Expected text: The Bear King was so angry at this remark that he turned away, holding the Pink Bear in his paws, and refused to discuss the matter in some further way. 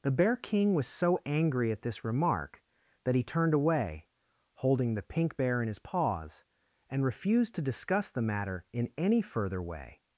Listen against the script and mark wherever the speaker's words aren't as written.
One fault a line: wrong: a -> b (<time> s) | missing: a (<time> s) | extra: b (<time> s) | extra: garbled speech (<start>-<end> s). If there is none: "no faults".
wrong: some -> any (9.0 s)